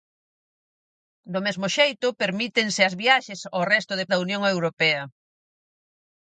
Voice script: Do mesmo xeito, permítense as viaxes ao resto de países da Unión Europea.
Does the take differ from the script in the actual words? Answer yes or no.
yes